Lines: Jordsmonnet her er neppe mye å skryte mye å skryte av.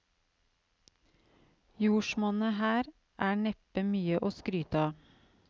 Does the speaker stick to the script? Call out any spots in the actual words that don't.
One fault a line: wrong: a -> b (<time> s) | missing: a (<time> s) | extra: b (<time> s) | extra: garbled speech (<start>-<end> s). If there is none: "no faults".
missing: mye å skryte (4.8 s)